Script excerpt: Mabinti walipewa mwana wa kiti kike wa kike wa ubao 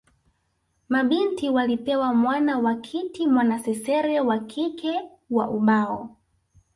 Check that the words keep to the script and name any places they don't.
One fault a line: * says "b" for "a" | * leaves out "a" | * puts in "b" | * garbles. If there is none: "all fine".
* says "mwanasesere" for "kike"